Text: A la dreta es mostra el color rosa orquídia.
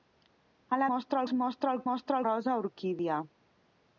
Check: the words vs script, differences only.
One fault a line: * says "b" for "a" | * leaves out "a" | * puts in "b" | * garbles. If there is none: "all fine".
* says "mostra" for "dreta"
* says "mostra" for "color"